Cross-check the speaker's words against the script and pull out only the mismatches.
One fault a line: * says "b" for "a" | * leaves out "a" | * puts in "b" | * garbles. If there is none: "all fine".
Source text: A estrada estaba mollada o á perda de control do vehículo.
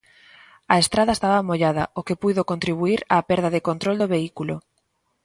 * puts in "que puido contribuír"